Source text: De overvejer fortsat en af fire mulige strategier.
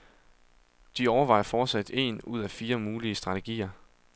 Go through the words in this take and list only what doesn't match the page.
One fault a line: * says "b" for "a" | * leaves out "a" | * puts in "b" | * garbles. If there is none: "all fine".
* puts in "ud"